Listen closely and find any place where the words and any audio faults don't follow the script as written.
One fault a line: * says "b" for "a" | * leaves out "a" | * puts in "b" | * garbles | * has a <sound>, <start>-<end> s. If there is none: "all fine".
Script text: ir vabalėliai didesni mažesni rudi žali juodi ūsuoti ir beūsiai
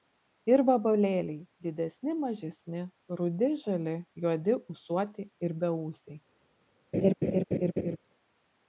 * has a laugh, 6.9-8.0 s